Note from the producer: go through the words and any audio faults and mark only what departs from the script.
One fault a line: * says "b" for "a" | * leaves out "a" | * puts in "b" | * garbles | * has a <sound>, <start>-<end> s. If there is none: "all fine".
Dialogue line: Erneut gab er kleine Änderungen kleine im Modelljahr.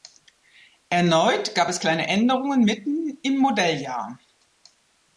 * says "es" for "er"
* says "mitten" for "kleine"